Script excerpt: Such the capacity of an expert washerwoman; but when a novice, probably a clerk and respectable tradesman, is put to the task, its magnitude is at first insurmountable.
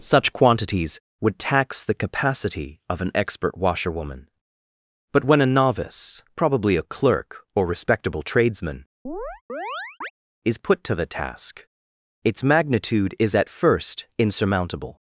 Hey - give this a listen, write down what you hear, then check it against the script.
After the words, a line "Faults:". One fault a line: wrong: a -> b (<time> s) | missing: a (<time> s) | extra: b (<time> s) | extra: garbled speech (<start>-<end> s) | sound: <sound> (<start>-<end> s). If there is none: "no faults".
Such quantities would tax the capacity of an expert washerwoman; but when a novice, probably a clerk or respectable tradesman, is put to the task, its magnitude is at first insurmountable.
Faults:
extra: quantities would tax (0.3 s)
wrong: and -> or (7.5 s)
sound: chirp (9.1-10.1 s)